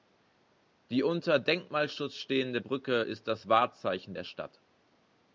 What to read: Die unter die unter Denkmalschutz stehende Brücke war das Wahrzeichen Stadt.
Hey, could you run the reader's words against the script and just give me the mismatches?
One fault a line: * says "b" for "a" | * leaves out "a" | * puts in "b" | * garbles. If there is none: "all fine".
* leaves out "die unter"
* says "ist" for "war"
* puts in "der"